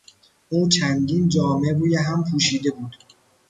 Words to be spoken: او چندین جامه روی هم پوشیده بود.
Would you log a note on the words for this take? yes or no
no